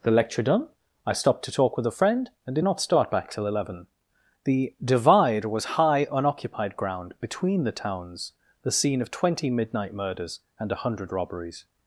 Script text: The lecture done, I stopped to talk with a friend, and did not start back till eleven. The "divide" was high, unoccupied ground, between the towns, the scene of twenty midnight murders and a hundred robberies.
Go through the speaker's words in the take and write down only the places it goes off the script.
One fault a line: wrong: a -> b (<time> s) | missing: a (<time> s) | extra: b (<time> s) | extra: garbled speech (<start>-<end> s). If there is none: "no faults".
no faults